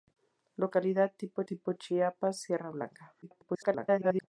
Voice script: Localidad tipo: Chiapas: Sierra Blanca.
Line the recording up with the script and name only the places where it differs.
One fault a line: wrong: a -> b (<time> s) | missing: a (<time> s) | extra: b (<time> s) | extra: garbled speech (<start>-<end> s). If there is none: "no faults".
extra: tipo (1.4 s)
extra: garbled speech (3.2-4.3 s)